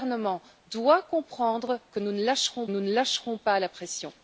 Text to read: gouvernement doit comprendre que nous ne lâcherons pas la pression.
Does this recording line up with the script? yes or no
no